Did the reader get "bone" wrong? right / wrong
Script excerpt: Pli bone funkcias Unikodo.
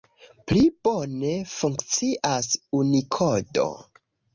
right